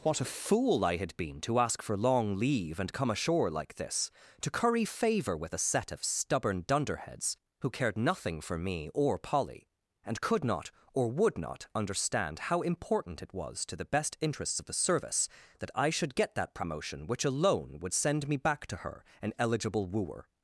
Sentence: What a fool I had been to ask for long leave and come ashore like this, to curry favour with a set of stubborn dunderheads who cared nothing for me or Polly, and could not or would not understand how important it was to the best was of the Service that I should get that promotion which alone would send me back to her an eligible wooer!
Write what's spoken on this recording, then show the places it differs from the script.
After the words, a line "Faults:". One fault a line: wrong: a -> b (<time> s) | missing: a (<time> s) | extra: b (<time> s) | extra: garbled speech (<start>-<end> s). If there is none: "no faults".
What a fool I had been to ask for long leave and come ashore like this, to curry favour with a set of stubborn dunderheads who cared nothing for me or Polly, and could not or would not understand how important it was to the best interests of the Service that I should get that promotion which alone would send me back to her an eligible wooer!
Faults:
wrong: was -> interests (14.2 s)